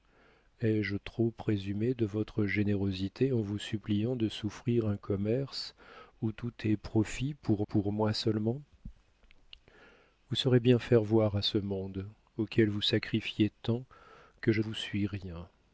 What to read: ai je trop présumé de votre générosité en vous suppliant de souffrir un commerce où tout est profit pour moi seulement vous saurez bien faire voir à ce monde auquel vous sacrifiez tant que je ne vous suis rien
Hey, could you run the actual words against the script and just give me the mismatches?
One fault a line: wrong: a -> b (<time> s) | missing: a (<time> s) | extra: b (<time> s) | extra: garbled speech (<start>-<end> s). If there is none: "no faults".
extra: pour (7.6 s)
missing: ne (14.6 s)